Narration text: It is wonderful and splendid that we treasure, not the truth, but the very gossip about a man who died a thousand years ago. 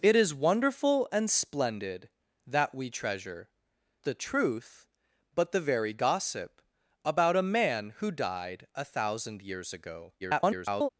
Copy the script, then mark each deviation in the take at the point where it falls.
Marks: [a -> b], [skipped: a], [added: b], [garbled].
It is wonderful and splendid that we treasure, [skipped: not] the truth, but the very gossip about a man who died a thousand years ago. [garbled]